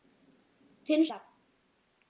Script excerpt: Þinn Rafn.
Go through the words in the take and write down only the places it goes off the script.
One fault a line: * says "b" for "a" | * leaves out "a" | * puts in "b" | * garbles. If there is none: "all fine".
all fine